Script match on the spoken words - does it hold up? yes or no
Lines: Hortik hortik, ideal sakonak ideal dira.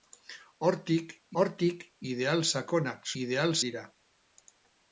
yes